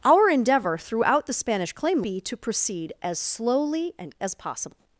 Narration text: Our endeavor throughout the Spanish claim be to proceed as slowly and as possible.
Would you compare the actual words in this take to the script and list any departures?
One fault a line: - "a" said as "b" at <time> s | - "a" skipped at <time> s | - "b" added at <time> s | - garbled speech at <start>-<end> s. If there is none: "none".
none